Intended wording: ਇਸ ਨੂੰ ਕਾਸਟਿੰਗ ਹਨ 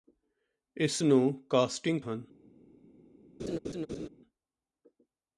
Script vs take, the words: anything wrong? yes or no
no